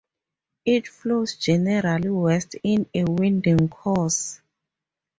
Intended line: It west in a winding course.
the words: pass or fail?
fail